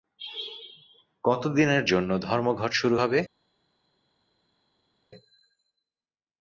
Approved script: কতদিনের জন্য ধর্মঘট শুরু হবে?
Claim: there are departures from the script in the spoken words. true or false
false